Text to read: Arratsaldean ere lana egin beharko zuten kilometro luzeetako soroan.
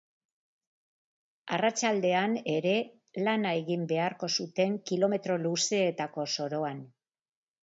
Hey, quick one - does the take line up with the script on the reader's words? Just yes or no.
yes